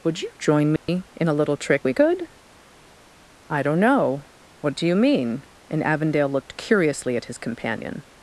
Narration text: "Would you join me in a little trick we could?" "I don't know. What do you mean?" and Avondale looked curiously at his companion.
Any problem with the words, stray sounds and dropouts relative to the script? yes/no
yes